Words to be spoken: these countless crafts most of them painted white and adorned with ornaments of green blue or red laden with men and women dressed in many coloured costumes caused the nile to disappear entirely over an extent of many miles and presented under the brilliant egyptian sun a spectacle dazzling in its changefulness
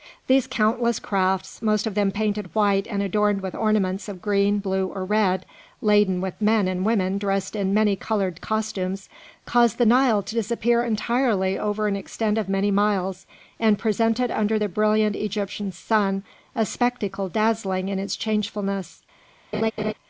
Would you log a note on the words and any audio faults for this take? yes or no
yes